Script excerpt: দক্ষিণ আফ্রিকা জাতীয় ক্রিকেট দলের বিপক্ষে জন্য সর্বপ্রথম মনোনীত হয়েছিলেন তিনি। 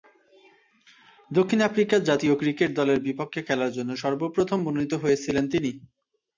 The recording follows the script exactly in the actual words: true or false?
false